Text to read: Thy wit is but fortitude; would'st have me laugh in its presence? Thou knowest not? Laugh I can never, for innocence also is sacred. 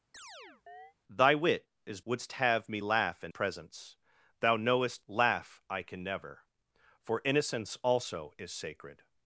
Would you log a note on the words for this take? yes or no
yes